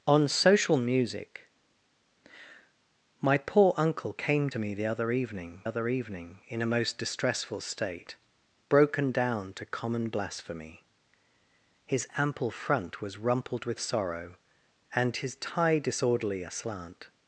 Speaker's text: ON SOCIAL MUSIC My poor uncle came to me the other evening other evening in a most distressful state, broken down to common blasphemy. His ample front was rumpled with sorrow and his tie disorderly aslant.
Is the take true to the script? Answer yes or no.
yes